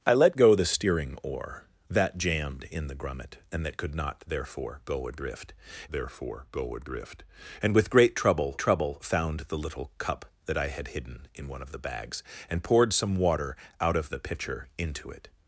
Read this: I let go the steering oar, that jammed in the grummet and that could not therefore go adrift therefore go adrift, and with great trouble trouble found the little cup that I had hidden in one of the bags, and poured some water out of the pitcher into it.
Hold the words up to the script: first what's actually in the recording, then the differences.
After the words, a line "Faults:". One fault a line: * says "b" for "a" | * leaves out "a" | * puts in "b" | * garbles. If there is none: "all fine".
I let go the steering oar, that jammed in the grummet and that could not therefore go adrift therefore go adrift, and with great trouble trouble found the little cup that I had hidden in one of the bags, and poured some water out of the pitcher into it.
Faults:
all fine